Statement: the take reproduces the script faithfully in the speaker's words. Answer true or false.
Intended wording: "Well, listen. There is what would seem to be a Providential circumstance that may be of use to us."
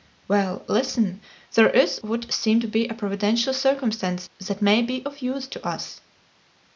false